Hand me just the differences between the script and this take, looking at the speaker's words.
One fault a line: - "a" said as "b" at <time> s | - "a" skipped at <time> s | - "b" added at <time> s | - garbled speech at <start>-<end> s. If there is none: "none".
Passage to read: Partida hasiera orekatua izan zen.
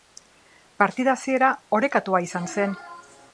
none